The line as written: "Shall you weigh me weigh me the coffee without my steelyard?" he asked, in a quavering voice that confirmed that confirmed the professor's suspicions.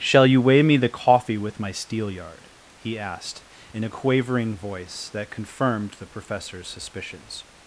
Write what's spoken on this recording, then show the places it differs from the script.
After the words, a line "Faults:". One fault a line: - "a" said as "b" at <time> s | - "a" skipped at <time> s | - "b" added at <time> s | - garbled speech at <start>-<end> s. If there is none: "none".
"Shall you weigh me the coffee with my steelyard?" he asked, in a quavering voice that confirmed the professor's suspicions.
Faults:
- "weigh me" skipped at 0.8 s
- "without" said as "with" at 1.4 s
- "that confirmed" skipped at 6.0 s